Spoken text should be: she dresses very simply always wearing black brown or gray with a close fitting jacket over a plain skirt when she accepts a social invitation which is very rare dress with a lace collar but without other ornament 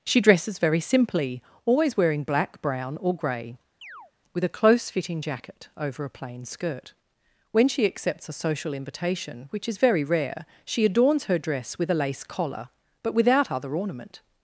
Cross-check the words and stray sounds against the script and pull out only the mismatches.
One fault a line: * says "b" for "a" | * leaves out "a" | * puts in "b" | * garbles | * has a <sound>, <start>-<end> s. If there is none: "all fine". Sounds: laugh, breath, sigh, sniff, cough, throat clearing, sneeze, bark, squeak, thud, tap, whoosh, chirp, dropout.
* has a chirp, 3.8-4.1 s
* puts in "she adorns her"